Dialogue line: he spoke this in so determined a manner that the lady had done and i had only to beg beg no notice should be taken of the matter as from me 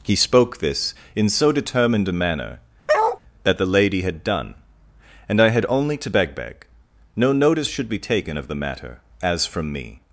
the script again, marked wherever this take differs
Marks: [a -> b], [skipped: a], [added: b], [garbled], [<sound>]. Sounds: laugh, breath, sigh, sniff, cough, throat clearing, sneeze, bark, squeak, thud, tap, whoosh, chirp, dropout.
he spoke this in so determined a manner [bark] that the lady had done and i had only to beg beg no notice should be taken of the matter as from me